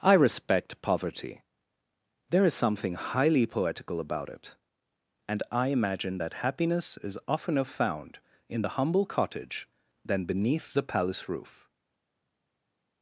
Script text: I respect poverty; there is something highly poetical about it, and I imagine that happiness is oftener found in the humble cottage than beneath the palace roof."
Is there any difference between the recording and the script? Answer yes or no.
no